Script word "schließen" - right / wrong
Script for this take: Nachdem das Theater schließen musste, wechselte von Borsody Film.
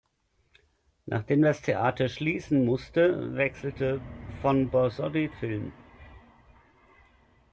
right